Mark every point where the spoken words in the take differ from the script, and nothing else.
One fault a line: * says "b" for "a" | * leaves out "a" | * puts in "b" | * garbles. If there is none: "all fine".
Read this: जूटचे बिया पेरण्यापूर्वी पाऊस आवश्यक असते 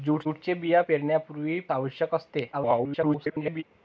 * leaves out "पाऊस"
* garbles